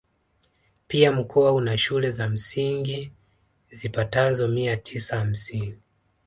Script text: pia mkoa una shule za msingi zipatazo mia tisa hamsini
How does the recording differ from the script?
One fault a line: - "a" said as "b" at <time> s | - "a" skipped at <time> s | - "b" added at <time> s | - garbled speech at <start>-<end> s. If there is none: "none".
none